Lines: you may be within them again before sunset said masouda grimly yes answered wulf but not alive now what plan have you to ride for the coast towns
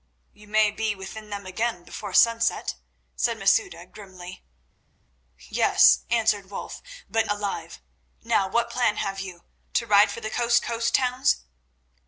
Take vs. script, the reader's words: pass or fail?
fail